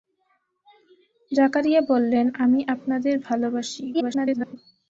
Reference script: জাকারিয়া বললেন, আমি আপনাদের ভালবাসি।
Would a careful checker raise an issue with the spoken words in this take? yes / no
yes